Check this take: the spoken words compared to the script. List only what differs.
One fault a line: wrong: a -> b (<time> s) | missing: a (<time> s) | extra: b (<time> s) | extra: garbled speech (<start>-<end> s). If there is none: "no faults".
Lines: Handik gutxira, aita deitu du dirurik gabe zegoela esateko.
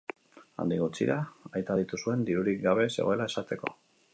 wrong: du -> zuen (2.0 s)